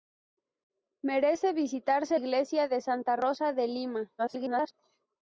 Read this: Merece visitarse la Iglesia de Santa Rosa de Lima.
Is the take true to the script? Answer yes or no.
no